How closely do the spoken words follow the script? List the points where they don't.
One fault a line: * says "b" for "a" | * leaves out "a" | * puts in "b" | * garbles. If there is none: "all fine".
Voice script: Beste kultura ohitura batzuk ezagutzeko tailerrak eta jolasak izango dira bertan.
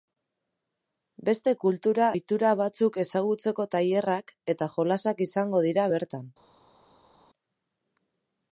all fine